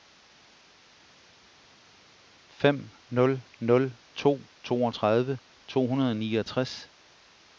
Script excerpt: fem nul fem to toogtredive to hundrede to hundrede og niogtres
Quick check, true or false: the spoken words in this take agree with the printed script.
false